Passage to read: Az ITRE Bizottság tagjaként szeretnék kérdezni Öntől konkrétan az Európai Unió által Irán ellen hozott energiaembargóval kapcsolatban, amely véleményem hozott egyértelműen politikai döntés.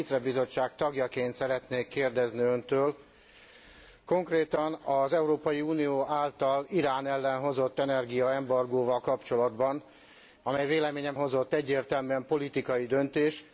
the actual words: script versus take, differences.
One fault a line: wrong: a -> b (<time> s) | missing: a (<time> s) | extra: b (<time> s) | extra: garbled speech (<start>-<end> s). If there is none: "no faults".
no faults